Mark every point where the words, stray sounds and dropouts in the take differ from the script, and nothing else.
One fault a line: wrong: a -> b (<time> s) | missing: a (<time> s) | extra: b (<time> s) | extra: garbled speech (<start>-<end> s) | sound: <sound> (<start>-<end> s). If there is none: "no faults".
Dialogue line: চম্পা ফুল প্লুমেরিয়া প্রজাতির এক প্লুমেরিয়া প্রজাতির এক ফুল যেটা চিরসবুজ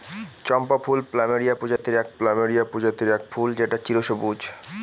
sound: dropout (1.8-1.8 s)